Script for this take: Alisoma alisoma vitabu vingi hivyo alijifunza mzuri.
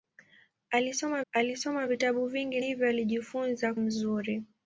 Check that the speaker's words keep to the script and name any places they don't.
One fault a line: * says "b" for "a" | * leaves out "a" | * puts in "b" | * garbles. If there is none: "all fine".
all fine